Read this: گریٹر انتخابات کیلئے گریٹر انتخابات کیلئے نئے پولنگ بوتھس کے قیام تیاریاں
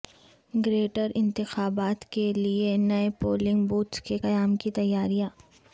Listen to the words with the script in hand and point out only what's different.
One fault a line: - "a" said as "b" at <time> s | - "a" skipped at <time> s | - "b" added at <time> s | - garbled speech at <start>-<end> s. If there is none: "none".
- "گریٹر انتخابات کیلئے" skipped at 2.8 s
- "کی" added at 4.6 s